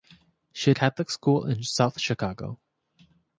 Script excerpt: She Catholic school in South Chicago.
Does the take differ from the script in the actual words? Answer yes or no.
no